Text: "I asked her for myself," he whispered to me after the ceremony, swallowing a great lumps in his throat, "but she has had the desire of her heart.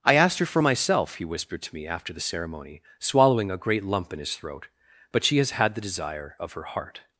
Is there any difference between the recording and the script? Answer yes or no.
yes